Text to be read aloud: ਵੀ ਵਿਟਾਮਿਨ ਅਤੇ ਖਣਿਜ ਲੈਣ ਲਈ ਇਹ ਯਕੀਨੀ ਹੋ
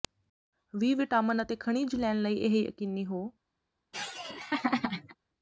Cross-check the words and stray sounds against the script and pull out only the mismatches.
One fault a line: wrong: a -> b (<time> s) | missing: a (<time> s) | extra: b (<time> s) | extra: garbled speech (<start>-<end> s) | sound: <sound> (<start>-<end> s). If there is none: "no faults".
sound: laugh (3.9-5.2 s)